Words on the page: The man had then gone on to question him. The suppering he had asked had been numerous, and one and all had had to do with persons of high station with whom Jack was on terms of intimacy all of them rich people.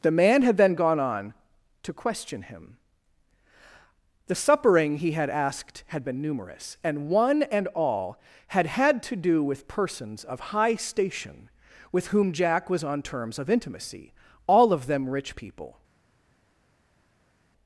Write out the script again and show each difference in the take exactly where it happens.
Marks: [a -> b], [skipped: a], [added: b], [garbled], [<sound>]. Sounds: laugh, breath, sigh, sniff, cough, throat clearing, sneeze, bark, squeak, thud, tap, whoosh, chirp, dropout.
The man had then gone on to question him. The suppering he had asked had been numerous, and one and all had had to do with persons of high station with whom Jack was on terms of intimacy all of them rich people.